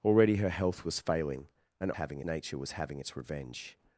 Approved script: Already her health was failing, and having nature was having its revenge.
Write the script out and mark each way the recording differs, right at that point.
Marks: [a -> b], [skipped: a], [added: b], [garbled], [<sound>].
Already her health was failing, and having nature was having its revenge.